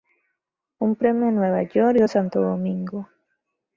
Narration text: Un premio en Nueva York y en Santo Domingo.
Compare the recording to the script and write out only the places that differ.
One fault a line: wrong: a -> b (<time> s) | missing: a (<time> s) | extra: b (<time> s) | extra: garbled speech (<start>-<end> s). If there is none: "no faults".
no faults